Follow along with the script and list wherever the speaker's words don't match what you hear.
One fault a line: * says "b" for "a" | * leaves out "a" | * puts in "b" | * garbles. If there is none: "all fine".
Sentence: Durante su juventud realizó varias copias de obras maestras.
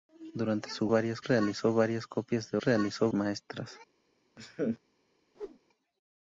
* says "varias" for "juventud"
* says "realizó" for "obras"